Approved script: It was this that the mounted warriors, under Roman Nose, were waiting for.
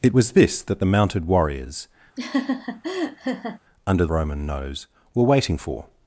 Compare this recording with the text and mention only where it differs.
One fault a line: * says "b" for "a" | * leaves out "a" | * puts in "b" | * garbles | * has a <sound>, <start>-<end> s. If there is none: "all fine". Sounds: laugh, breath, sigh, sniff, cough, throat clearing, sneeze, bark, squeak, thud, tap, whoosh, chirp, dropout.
* has a laugh, 2.2-3.6 s